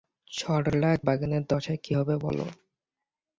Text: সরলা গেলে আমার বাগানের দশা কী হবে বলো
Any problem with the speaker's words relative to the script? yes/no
yes